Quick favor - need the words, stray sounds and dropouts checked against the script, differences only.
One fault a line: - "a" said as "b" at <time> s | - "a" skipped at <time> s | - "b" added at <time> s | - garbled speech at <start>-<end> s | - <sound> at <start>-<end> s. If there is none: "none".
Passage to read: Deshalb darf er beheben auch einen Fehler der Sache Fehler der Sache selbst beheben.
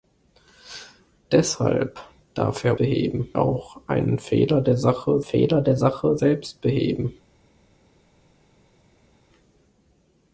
none